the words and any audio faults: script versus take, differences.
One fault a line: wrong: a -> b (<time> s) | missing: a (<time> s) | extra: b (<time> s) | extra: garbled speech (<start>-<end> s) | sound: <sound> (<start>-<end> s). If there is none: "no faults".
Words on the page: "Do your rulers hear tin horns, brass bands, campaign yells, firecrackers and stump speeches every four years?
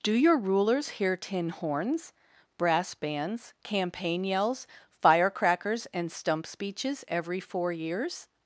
no faults